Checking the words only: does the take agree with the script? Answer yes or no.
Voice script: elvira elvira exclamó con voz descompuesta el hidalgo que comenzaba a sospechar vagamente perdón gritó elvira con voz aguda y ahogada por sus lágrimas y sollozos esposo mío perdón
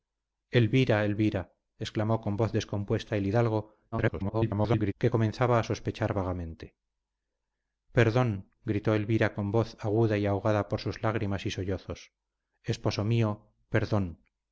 no